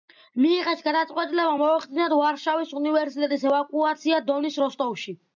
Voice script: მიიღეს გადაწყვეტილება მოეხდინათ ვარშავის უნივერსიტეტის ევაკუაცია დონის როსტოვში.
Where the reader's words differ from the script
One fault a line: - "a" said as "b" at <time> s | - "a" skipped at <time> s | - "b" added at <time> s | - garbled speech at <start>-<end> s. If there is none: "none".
none